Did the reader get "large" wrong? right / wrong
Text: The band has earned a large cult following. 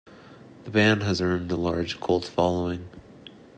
right